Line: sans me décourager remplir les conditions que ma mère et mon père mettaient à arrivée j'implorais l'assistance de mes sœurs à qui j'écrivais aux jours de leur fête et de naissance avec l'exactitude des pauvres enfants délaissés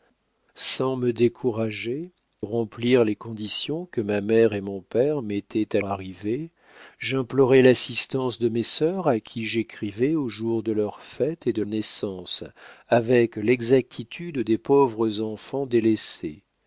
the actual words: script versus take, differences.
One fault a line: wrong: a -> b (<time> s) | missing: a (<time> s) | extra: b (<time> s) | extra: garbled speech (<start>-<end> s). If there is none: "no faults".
no faults